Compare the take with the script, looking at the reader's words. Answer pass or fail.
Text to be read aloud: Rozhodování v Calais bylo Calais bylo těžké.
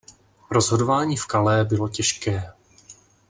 fail